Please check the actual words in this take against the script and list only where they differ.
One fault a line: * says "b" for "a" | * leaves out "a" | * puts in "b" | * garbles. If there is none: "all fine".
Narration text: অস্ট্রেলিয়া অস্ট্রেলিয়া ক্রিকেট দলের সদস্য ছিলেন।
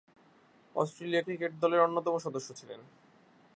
* leaves out "অস্ট্রেলিয়া"
* puts in "অন্যতম"